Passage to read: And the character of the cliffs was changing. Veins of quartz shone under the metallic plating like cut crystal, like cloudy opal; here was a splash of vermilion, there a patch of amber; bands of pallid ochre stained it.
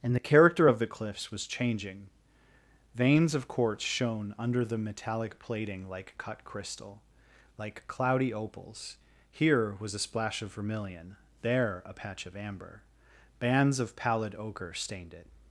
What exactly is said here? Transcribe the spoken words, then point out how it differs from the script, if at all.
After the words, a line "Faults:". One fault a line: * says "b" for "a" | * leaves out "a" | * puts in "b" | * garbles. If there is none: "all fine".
And the character of the cliffs was changing. Veins of quartz shone under the metallic plating like cut crystal, like cloudy opals; here was a splash of vermilion, there a patch of amber; bands of pallid ochre stained it.
Faults:
* says "opals" for "opal"